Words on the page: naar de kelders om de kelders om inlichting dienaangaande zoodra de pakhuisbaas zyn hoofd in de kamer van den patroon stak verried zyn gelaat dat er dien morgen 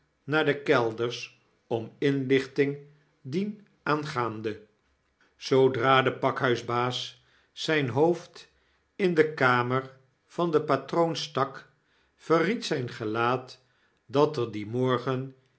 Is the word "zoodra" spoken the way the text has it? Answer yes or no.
yes